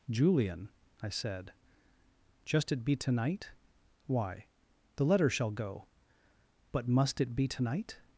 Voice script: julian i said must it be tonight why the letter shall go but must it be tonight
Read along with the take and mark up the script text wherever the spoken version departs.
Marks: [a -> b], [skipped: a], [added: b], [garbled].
julian i said [must -> just] it be tonight why the letter shall go but must it be tonight